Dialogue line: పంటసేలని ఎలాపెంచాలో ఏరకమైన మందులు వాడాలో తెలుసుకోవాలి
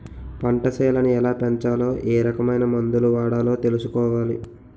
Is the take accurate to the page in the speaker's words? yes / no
yes